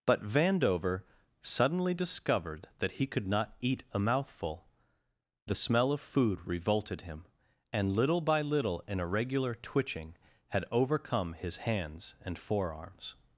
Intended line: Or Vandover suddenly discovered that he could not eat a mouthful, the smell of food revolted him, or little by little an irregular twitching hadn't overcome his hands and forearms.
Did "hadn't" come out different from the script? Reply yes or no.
yes